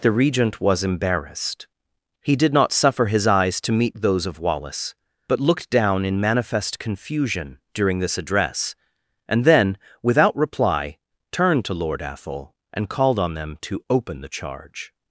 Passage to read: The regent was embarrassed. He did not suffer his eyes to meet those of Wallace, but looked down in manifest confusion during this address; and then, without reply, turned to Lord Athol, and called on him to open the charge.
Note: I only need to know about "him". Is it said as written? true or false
false